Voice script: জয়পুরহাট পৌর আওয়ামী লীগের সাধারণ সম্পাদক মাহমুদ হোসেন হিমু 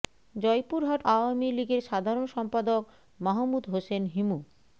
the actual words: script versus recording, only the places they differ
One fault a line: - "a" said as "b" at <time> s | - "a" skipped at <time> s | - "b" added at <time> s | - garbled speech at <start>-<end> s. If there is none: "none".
- "পৌর" skipped at 1.0 s